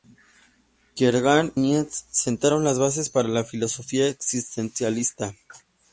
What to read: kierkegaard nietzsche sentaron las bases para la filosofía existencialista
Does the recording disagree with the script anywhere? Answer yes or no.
no